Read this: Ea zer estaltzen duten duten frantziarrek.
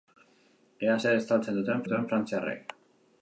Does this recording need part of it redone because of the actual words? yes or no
no